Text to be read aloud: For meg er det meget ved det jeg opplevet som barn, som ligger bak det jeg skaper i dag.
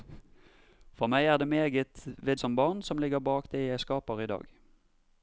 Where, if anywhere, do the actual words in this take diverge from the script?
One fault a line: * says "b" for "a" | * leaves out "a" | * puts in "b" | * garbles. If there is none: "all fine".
* leaves out "det jeg opplevet"